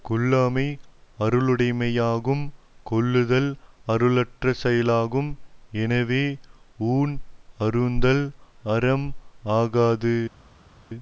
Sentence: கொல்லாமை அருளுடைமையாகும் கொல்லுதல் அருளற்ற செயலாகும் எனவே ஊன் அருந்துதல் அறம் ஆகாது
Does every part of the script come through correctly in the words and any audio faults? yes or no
yes